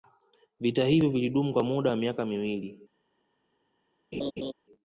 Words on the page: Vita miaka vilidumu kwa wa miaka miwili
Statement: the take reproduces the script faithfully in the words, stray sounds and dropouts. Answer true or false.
false